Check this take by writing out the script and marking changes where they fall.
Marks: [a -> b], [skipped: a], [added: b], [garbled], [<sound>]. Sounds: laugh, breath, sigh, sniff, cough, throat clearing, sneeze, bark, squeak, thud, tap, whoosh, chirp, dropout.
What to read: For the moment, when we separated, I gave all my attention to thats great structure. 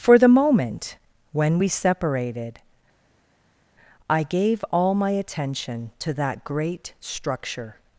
For the moment, when we separated, I gave all my attention to [thats -> that] great structure.